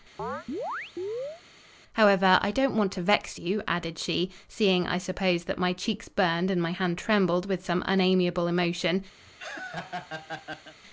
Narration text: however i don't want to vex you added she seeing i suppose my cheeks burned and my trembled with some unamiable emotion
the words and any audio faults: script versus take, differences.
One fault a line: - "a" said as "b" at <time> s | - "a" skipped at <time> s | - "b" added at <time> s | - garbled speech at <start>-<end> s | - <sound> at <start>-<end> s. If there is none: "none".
- chirp at 0.2-1.4 s
- "that" added at 5.4 s
- "hand" added at 6.7 s
- laugh at 9.2-10.7 s